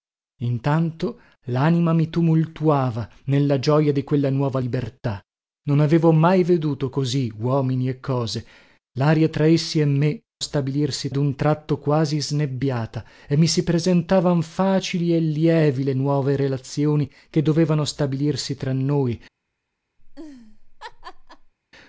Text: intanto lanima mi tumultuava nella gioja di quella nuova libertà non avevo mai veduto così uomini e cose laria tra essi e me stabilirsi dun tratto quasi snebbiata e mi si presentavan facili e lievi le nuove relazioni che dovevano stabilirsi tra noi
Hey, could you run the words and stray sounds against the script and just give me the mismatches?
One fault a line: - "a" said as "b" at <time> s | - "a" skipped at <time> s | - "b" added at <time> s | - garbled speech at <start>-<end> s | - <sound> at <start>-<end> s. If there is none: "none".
- laugh at 20.0-21.5 s